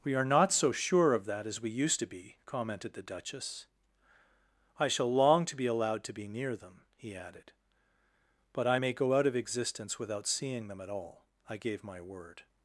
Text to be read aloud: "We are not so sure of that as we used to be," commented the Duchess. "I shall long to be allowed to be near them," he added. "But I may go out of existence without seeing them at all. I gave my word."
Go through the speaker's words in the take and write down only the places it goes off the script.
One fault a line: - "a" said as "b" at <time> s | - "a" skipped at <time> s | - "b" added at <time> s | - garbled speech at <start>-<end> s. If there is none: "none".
none